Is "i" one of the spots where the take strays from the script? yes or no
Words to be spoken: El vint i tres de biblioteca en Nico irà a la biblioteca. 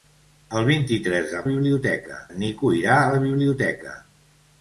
no